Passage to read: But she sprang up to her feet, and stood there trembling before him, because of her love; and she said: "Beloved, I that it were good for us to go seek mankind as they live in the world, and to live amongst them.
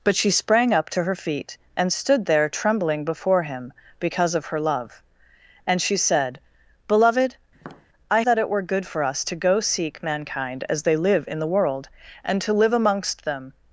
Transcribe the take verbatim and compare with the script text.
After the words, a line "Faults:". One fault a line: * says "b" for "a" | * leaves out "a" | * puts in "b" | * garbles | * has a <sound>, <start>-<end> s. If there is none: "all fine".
But she sprang up to her feet, and stood there trembling before him, because of her love; and she said: "Beloved, I that it were good for us to go seek mankind as they live in the world, and to live amongst them.
Faults:
* has a tap, 7.5-7.9 s